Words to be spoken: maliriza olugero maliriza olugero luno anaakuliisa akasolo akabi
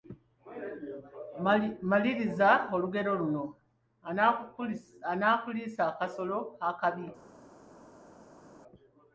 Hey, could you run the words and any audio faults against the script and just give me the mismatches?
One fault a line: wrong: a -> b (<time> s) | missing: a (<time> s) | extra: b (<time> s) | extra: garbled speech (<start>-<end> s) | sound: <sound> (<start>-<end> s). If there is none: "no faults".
missing: maliriza olugero (3.1 s)